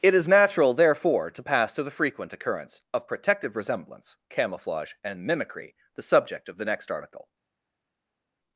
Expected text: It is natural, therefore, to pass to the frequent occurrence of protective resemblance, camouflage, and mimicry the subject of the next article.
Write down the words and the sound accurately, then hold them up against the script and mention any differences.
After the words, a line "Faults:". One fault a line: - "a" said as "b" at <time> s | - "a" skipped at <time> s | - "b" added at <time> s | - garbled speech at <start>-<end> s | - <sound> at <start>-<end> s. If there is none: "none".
It is natural, therefore, to pass to the frequent occurrence of protective resemblance, camouflage, and mimicry the subject of the next article.
Faults:
none